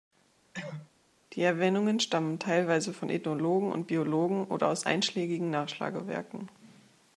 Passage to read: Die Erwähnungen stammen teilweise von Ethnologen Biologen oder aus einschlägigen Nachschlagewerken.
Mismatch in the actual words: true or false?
true